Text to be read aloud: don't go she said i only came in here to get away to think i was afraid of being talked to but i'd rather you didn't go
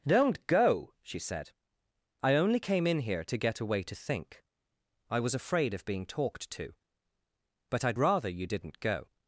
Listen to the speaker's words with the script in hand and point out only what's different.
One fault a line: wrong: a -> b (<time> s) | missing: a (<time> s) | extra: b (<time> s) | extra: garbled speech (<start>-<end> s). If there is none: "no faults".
no faults